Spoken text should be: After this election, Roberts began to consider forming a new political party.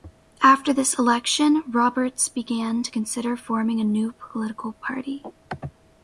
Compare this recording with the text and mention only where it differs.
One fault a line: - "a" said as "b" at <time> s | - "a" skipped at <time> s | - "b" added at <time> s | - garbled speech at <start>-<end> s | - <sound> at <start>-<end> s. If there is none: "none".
none